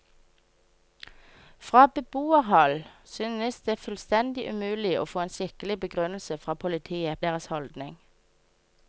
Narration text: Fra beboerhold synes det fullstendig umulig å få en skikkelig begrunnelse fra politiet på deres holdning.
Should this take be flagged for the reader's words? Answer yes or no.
yes